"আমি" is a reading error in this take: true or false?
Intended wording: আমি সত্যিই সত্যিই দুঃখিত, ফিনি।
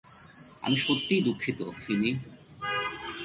false